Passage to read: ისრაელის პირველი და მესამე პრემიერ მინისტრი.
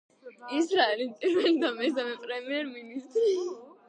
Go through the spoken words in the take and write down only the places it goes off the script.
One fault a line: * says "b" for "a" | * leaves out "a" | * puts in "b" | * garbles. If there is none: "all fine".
all fine